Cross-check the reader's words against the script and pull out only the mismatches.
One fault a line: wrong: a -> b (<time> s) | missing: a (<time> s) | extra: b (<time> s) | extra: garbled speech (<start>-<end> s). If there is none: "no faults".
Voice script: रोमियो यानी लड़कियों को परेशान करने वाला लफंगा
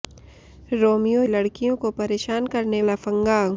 missing: यानी (1.2 s)
missing: वाला (2.8 s)